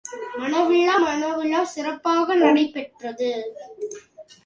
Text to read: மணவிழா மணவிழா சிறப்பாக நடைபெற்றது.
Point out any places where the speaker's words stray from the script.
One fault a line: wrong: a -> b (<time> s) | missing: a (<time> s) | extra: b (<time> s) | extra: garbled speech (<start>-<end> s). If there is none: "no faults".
no faults